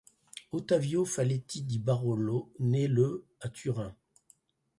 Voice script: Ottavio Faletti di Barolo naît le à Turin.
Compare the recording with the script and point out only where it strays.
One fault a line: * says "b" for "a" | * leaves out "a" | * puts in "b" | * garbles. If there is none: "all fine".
all fine